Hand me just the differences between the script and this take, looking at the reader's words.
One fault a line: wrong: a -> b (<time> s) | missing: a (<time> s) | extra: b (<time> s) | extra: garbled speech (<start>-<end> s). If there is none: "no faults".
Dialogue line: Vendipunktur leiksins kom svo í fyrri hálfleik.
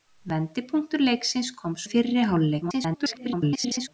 missing: svo (1.8 s)
extra: garbled speech (2.6-3.9 s)